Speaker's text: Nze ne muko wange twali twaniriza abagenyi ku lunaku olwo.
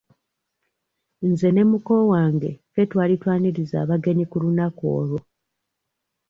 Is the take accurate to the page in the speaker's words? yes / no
no